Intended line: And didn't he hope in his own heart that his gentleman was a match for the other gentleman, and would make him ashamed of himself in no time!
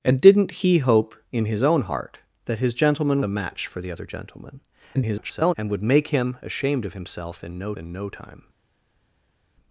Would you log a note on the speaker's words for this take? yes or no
yes